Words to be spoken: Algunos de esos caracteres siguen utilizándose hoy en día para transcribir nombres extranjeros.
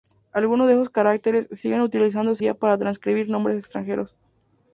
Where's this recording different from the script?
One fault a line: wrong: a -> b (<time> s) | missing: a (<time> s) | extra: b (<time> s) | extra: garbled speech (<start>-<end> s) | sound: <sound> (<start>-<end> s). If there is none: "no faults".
missing: hoy en (2.4 s)